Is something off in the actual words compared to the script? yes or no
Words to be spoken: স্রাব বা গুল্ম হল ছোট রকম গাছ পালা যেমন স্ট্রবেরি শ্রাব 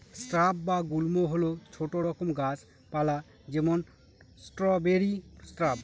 no